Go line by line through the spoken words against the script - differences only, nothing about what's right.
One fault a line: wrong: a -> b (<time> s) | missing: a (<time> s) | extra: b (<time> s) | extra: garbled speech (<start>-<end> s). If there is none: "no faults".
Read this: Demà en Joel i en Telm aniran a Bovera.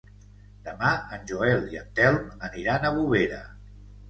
no faults